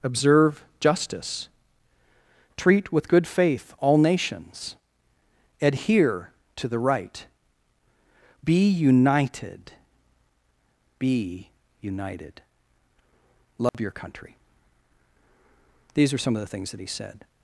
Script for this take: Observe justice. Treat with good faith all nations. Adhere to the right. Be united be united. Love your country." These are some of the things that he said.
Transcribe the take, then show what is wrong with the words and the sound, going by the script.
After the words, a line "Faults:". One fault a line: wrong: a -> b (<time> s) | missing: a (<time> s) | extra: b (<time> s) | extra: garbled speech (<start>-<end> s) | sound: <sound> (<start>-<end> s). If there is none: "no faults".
Observe justice. Treat with good faith all nations. Adhere to the right. Be united be united. Love your country." These are some of the things that he said.
Faults:
sound: dropout (13.7-13.7 s)